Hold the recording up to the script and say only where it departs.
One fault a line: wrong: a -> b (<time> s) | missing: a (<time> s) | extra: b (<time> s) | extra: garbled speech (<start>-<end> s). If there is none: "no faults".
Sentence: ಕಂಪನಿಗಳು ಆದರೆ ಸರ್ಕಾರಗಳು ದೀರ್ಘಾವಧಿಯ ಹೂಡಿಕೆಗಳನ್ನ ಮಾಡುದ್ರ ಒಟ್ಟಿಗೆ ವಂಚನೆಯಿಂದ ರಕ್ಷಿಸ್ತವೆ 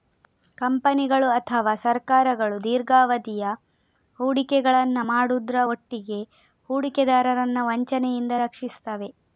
wrong: ಆದರೆ -> ಅಥವಾ (1.3 s)
extra: ಹೂಡಿಕೆದಾರರನ್ನ (6.7 s)